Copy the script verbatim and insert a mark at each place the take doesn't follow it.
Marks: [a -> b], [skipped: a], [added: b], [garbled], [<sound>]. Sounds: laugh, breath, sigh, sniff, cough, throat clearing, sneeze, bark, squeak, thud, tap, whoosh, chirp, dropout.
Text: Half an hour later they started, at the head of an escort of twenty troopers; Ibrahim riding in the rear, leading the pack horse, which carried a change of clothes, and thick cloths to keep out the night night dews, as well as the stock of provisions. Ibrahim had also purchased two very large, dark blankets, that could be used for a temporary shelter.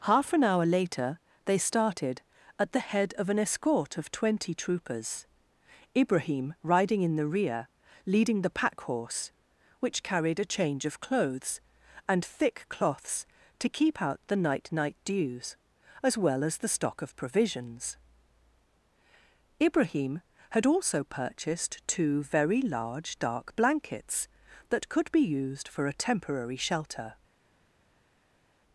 Half an hour later they started, at the head of an escort of twenty troopers; Ibrahim riding in the rear, leading the pack horse, which carried a change of clothes, and thick cloths to keep out the night night dews, as well as the stock of provisions. Ibrahim had also purchased two very large, dark blankets, that could be used for a temporary shelter.